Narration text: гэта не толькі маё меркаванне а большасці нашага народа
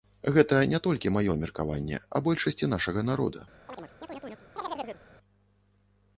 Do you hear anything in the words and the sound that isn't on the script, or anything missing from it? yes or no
yes